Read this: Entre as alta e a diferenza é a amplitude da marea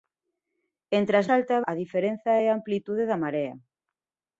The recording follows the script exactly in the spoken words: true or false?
true